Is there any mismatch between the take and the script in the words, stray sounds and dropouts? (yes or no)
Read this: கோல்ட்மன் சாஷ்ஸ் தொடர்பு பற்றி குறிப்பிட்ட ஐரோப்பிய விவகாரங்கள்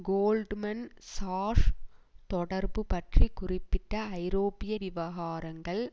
no